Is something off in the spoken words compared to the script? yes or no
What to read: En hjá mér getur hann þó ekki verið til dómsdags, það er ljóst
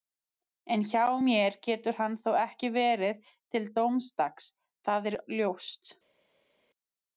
no